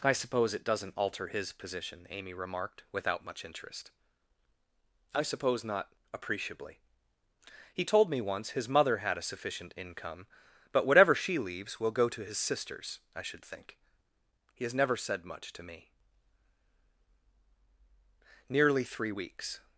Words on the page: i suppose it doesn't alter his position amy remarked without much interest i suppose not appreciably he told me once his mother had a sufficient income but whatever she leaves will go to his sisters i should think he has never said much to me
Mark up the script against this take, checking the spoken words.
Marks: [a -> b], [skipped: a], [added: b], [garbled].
i suppose it doesn't alter his position amy remarked without much interest i suppose not appreciably he told me once his mother had a sufficient income but whatever she leaves will go to his sisters i should think he has never said much to me [added: nearly three weeks]